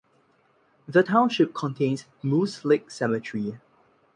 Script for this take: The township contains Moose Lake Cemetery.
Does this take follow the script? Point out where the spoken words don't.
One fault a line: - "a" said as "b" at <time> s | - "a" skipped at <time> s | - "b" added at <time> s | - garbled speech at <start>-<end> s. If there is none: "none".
none